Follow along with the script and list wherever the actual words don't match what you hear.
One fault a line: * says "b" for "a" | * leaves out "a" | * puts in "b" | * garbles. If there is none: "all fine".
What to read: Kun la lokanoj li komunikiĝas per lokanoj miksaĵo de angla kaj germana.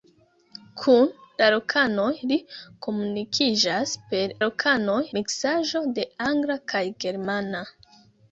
all fine